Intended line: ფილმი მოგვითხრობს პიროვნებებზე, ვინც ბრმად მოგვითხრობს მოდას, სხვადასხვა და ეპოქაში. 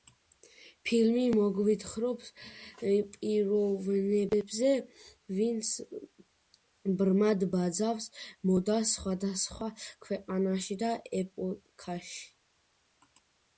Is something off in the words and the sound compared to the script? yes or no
yes